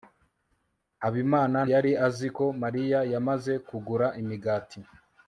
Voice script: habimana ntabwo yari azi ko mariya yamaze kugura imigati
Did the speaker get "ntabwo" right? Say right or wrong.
wrong